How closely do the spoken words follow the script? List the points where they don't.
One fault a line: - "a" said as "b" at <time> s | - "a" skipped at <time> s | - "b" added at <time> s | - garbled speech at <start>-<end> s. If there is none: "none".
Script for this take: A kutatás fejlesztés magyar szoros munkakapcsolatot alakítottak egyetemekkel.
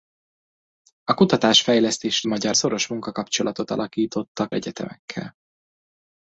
none